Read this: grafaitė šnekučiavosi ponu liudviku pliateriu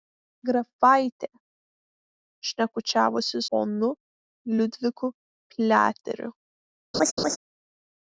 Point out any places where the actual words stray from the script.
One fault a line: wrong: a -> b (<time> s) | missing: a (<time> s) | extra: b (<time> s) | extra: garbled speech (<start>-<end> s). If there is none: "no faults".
no faults